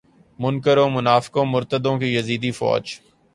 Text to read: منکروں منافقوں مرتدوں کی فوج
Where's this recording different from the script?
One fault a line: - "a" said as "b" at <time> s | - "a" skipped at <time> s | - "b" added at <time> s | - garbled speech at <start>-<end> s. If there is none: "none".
- "یزیدی" added at 2.1 s